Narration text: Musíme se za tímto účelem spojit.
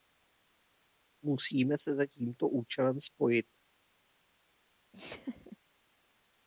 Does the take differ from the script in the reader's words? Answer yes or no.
no